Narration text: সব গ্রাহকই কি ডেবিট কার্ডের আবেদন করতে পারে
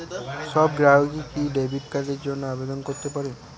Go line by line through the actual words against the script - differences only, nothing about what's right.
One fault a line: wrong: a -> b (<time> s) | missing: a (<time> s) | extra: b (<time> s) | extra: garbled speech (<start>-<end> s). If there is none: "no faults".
extra: জন্য (2.3 s)